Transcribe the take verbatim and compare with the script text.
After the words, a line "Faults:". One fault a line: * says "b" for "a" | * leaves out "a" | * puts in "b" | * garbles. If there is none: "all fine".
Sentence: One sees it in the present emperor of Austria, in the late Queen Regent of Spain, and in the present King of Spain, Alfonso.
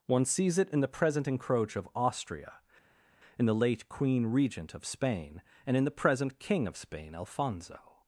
One sees it in the present encroach of Austria, in the late Queen Regent of Spain, and in the present King of Spain, Alfonso.
Faults:
* says "encroach" for "emperor"